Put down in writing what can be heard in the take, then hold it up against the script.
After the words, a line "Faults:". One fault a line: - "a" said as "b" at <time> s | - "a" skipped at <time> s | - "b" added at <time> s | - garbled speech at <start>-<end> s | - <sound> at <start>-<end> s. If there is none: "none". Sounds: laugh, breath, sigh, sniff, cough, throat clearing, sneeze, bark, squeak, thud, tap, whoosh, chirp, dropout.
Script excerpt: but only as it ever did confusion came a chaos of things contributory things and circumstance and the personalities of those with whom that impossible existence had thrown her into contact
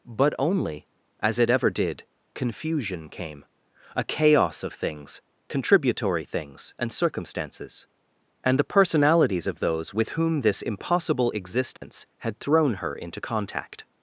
but only as it ever did confusion came a chaos of things contributory things and circumstances and the personalities of those with whom this impossible existence had thrown her into contact
Faults:
- "circumstance" said as "circumstances" at 6.9 s
- "that" said as "this" at 10.4 s
- dropout at 11.8-11.8 s